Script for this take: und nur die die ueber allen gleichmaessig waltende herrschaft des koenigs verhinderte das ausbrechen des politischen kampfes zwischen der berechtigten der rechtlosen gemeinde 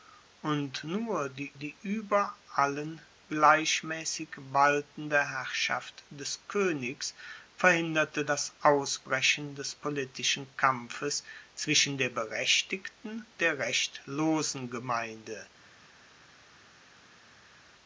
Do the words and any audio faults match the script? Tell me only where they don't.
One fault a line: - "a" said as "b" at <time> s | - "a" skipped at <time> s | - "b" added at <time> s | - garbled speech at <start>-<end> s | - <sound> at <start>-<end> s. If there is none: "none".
none